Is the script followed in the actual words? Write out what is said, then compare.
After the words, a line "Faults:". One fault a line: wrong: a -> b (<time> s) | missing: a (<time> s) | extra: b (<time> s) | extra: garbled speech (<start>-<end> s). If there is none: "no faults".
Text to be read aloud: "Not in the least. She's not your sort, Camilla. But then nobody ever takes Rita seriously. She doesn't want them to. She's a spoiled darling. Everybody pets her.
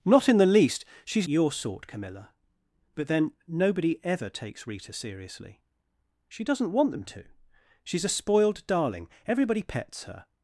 "Not in the least. She's your sort, Camilla. But then nobody ever takes Rita seriously. She doesn't want them to. She's a spoiled darling. Everybody pets her.
Faults:
missing: not (1.3 s)